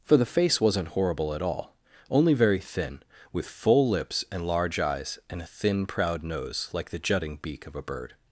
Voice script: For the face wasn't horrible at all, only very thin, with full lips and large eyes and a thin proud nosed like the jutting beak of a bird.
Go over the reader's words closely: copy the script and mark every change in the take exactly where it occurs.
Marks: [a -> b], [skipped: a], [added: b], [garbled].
For the face wasn't horrible at all, only very thin, with full lips and large eyes and a thin proud [nosed -> nose] like the jutting beak of a bird.